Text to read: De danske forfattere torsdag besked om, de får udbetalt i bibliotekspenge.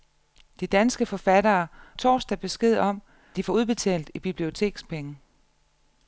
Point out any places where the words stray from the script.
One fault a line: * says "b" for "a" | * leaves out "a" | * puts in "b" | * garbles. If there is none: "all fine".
all fine